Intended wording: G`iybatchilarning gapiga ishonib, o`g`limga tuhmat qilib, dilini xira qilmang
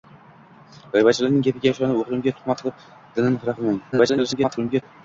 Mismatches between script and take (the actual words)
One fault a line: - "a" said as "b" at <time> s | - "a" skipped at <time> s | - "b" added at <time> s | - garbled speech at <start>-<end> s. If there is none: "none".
- garbled speech at 3.9-4.8 s